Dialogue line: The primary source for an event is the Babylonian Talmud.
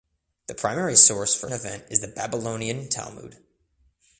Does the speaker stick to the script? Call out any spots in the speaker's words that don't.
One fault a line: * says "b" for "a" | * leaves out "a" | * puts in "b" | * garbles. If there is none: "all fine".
all fine